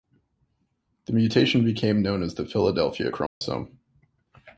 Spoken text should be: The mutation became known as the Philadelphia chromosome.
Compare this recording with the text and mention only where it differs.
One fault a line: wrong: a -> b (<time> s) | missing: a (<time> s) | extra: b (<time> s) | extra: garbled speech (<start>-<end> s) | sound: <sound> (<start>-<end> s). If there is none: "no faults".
sound: dropout (3.3-3.4 s)